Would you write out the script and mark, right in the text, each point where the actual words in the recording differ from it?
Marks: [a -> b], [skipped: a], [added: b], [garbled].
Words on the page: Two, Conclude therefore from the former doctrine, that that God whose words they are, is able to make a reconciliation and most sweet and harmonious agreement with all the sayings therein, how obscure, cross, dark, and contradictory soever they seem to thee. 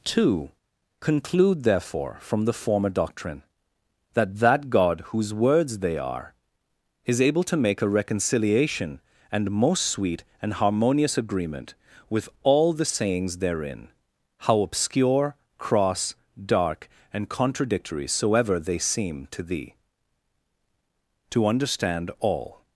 Two, Conclude therefore from the former doctrine, that that God whose words they are, is able to make a reconciliation and most sweet and harmonious agreement with all the sayings therein, how obscure, cross, dark, and contradictory soever they seem to thee. [added: To understand all]